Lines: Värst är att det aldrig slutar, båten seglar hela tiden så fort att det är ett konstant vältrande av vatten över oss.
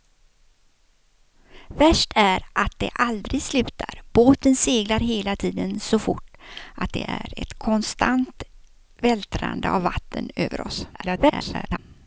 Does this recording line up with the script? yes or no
no